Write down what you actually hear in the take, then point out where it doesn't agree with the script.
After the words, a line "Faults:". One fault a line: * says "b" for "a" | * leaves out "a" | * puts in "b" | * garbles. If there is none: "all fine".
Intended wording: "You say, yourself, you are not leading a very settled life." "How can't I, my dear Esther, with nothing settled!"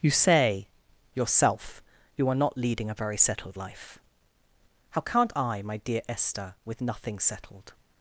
"You say, yourself, you are not leading a very settled life." "How can't I, my dear Esther, with nothing settled!"
Faults:
all fine